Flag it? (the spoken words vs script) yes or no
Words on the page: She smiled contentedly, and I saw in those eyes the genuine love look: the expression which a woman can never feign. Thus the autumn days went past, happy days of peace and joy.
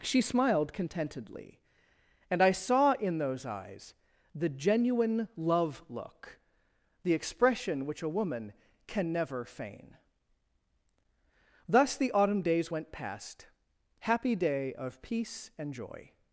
yes